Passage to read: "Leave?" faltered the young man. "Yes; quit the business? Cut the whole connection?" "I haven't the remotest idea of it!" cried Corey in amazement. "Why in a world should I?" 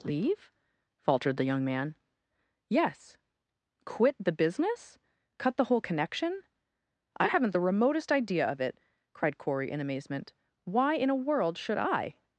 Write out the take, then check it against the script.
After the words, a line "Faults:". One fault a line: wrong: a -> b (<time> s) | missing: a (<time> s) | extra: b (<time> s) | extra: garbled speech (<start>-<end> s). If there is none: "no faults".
"Leave?" faltered the young man. "Yes; quit the business? Cut the whole connection?" "I haven't the remotest idea of it!" cried Corey in amazement. "Why in a world should I?"
Faults:
no faults